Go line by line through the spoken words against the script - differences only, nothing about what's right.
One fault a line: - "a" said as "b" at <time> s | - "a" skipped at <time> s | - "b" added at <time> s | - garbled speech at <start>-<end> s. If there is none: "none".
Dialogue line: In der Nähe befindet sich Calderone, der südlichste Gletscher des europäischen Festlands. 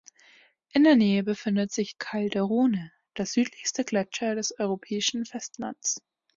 none